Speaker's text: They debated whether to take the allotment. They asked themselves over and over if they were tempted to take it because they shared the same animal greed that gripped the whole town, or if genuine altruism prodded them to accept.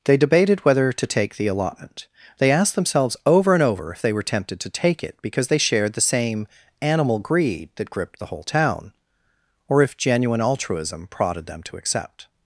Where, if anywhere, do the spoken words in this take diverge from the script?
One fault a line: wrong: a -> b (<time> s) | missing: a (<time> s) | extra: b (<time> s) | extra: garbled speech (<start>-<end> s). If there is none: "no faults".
no faults